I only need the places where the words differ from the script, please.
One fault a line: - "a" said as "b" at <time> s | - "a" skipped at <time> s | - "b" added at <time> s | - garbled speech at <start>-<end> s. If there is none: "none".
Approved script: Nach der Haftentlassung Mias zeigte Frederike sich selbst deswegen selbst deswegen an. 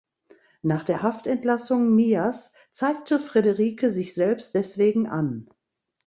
- "selbst deswegen" skipped at 5.1 s